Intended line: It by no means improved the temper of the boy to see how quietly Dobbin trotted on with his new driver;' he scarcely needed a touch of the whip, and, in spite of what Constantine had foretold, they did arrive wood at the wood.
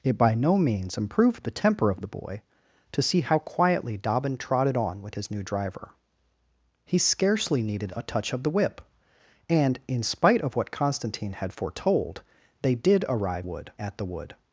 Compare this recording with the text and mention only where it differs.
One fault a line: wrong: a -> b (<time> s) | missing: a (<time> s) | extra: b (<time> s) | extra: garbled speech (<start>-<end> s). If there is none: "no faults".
no faults